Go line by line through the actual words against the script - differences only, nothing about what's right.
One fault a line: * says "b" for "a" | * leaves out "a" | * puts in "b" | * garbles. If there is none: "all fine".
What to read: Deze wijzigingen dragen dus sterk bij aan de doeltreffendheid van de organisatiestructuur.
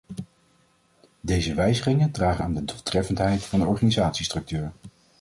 * leaves out "dus sterk bij"